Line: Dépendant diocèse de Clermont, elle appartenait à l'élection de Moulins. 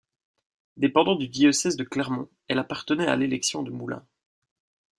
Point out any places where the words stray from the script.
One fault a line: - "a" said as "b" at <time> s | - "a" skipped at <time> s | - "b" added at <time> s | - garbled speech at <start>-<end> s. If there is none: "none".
- "du" added at 1.1 s